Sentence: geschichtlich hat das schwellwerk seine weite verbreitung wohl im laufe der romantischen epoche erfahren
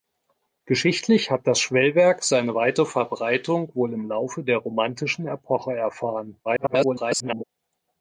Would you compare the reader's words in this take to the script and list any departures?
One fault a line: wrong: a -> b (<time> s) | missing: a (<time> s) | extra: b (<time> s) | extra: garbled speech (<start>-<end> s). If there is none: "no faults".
extra: garbled speech (6.4-7.4 s)